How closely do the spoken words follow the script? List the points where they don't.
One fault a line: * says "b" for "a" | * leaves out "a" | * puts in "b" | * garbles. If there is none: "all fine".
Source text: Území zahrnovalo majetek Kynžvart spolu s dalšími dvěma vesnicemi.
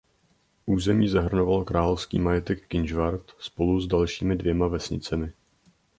* puts in "královský"